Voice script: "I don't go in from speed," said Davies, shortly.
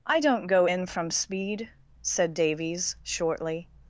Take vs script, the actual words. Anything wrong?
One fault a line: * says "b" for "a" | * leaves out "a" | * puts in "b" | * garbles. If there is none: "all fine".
all fine